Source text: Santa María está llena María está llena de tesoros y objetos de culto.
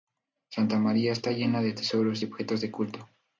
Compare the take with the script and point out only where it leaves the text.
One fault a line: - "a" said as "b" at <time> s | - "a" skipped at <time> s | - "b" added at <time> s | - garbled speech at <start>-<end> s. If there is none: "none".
- "María está llena" skipped at 1.6 s